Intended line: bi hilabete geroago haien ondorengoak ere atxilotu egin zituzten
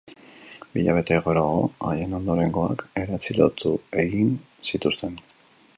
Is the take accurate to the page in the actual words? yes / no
yes